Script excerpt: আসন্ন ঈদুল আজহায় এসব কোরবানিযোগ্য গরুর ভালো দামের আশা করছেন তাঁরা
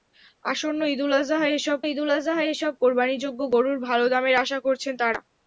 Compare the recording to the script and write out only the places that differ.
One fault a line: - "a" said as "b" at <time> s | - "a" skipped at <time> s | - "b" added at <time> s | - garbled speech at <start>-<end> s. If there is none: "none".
- "ঈদুল আজহায় এসব" added at 1.9 s